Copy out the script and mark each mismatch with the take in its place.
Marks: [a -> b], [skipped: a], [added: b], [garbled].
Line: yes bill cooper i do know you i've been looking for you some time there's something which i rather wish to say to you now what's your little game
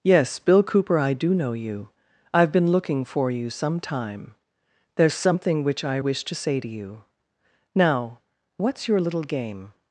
yes bill cooper i do know you i've been looking for you some time there's something which i [skipped: rather] wish to say to you now what's your little game